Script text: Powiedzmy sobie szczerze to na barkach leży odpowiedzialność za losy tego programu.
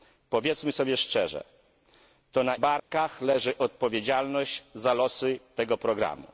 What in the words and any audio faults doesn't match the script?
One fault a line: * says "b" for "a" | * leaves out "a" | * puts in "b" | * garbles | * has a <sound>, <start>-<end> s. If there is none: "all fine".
* has a dropout, 2.8-2.9 s